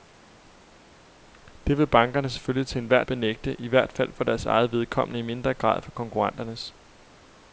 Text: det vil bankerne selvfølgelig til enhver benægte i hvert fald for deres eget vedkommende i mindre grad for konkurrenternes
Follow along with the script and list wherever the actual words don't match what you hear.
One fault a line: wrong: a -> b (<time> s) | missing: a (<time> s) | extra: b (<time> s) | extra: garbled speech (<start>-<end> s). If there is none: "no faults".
no faults